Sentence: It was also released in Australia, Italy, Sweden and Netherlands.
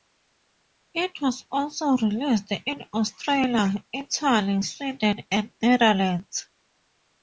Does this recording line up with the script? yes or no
yes